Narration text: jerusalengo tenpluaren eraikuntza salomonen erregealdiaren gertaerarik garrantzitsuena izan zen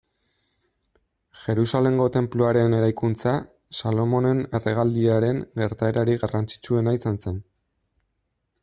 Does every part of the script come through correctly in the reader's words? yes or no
yes